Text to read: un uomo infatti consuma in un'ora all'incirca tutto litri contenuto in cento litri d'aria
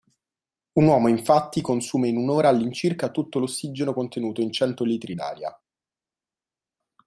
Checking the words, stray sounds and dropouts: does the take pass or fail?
fail